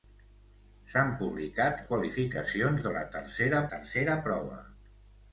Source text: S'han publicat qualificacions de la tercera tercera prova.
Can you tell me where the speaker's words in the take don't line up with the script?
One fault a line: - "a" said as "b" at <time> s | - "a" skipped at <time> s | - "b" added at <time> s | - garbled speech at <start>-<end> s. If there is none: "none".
none